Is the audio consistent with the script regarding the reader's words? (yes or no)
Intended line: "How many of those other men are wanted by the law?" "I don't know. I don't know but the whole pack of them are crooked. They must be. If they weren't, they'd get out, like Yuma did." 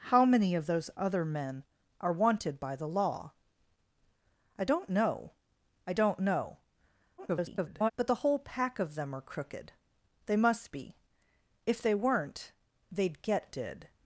no